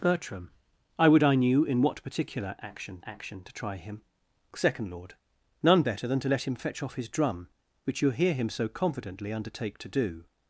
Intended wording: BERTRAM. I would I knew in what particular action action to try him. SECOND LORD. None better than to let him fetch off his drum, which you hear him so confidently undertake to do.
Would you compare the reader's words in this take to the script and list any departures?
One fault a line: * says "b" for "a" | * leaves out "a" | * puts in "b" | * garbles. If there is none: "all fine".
all fine